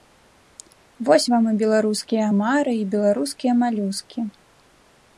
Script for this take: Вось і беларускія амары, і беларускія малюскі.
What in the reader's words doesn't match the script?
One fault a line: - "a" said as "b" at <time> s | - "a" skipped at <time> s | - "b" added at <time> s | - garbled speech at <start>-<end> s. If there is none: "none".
- "вам" added at 1.3 s